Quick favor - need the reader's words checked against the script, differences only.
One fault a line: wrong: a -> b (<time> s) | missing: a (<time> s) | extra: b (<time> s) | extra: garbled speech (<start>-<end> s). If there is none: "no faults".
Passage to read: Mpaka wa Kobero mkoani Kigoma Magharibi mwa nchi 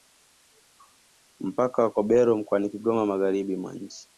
no faults